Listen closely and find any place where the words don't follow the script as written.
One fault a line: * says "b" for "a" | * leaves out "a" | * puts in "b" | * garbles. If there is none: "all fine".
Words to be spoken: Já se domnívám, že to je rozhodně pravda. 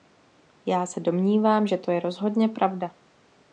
all fine